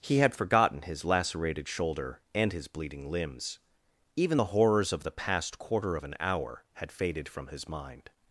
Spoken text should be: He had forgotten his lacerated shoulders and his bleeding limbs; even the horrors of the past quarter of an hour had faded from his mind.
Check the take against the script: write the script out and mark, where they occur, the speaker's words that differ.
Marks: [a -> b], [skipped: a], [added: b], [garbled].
He had forgotten his lacerated [shoulders -> shoulder] and his bleeding limbs; even the horrors of the past quarter of an hour had faded from his mind.